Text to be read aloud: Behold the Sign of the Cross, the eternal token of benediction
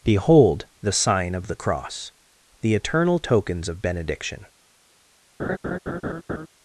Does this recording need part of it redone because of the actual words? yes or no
yes